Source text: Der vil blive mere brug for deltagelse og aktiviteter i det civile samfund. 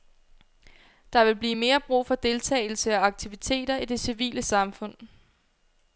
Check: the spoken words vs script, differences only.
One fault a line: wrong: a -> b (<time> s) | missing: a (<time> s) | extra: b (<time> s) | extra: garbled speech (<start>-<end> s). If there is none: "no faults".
no faults